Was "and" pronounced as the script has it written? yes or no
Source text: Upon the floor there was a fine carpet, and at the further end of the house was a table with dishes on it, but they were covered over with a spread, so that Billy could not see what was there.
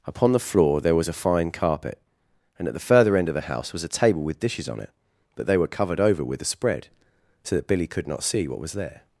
yes